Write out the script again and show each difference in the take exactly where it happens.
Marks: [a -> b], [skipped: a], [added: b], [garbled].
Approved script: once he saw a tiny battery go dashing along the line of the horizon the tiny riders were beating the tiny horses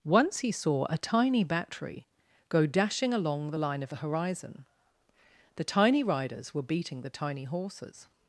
once he saw a tiny battery go dashing along the line of the horizon the tiny riders were beating the tiny horses